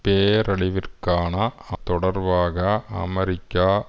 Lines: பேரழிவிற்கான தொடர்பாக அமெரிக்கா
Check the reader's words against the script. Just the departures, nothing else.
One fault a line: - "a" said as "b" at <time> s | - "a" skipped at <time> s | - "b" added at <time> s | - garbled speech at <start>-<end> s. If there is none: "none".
none